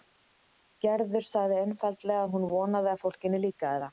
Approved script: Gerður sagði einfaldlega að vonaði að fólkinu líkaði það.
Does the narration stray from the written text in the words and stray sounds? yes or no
yes